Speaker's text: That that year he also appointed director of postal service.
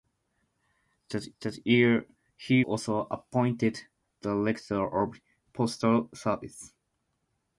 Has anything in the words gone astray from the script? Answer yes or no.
no